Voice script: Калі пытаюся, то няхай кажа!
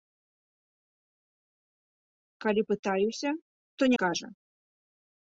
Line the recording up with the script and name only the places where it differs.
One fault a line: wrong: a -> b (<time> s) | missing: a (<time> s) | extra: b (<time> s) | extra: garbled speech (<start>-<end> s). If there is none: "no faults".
missing: няхай (3.9 s)